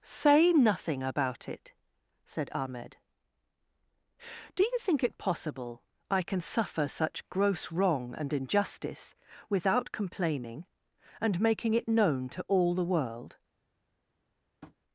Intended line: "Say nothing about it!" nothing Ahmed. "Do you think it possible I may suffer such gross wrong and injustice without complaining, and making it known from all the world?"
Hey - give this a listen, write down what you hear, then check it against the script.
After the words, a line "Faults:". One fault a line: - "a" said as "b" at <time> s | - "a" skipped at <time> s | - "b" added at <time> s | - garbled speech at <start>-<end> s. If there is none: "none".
"Say nothing about it!" said Ahmed. "Do you think it possible I can suffer such gross wrong and injustice without complaining, and making it known to all the world?"
Faults:
- "nothing" said as "said" at 2.2 s
- "may" said as "can" at 6.2 s
- "from" said as "to" at 12.3 s